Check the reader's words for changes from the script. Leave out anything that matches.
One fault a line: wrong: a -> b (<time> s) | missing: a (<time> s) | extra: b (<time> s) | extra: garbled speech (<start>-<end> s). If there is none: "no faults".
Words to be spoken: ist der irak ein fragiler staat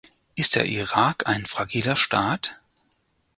no faults